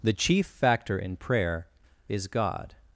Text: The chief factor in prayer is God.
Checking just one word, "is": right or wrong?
right